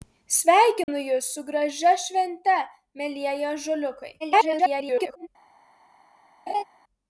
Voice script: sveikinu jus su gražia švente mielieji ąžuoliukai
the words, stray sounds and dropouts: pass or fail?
fail